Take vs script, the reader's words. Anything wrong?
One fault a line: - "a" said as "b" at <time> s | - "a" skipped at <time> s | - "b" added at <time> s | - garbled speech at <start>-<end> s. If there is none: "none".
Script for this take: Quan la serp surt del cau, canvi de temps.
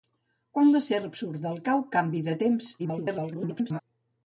- garbled speech at 2.8-3.8 s